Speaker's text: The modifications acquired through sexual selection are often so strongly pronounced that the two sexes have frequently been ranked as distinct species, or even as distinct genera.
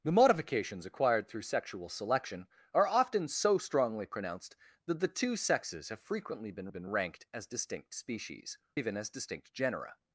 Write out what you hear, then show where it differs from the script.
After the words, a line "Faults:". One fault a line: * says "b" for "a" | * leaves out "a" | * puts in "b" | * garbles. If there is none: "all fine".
The modifications acquired through sexual selection are often so strongly pronounced that the two sexes have frequently been been ranked as distinct species, even as distinct genera.
Faults:
* puts in "been"
* leaves out "or"